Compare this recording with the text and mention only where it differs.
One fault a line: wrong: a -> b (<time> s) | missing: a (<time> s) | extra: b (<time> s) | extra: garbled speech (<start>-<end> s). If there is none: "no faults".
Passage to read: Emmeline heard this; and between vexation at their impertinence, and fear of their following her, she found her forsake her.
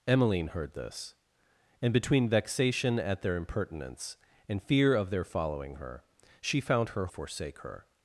no faults